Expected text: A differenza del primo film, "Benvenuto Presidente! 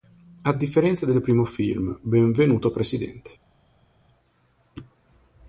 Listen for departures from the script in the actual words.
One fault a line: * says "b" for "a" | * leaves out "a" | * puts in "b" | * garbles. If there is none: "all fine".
all fine